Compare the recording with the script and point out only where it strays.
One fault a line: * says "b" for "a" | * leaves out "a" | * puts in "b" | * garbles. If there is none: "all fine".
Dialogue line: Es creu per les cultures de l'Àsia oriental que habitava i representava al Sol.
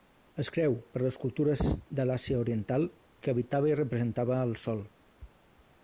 all fine